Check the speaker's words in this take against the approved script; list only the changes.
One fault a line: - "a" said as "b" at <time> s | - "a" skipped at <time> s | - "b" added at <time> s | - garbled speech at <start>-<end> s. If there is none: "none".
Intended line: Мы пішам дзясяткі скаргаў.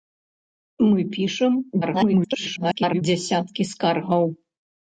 - garbled speech at 1.8-3.0 s